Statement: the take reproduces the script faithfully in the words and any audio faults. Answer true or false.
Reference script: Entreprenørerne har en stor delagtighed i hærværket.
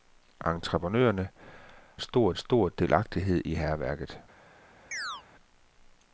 false